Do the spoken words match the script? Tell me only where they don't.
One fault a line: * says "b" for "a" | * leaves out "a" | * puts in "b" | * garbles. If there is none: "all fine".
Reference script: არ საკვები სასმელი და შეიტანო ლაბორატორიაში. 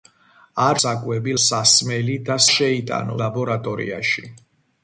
all fine